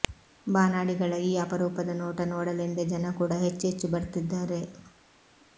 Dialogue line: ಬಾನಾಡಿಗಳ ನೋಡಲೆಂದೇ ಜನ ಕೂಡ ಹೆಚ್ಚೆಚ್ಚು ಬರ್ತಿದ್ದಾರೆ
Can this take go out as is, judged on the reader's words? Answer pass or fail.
fail